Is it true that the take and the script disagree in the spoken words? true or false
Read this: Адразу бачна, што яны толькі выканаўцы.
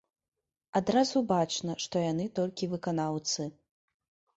false